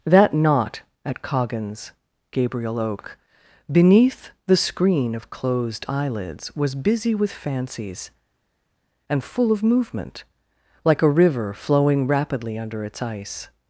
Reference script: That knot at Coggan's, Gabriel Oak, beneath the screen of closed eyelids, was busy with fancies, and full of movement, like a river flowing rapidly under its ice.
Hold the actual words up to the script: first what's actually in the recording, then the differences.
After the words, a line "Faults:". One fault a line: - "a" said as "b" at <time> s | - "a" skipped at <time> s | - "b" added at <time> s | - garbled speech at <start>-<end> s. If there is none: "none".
That knot at Coggan's, Gabriel Oak, beneath the screen of closed eyelids, was busy with fancies, and full of movement, like a river flowing rapidly under its ice.
Faults:
none